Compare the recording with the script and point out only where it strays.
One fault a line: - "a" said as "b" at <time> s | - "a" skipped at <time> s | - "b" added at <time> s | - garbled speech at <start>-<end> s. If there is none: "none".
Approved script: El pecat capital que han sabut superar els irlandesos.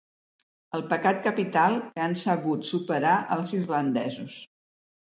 none